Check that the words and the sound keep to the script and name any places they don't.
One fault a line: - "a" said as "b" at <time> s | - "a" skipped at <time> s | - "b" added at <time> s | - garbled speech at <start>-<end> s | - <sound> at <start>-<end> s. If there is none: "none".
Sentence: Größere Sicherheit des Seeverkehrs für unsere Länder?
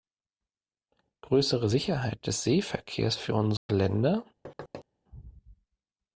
- dropout at 3.6-3.7 s
- thud at 4.4-4.8 s